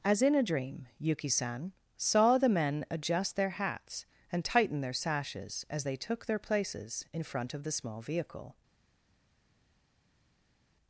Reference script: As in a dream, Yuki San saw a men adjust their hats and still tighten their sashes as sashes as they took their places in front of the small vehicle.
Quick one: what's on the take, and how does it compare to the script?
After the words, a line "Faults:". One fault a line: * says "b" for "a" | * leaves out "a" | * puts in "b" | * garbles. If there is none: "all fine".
As in a dream, Yuki San saw the men adjust their hats and tighten their sashes as they took their places in front of the small vehicle.
Faults:
* says "the" for "a"
* leaves out "still"
* leaves out "sashes as"